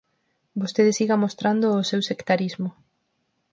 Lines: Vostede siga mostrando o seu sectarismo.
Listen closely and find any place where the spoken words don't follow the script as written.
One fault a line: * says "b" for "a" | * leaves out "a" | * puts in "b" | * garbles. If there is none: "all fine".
all fine